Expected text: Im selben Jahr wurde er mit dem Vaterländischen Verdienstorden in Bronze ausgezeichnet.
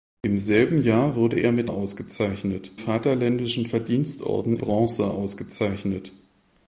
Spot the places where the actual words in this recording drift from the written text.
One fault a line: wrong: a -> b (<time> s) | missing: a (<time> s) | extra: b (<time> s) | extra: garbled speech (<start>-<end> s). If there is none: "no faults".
wrong: dem -> ausgezeichnet (1.6 s)
missing: in (4.6 s)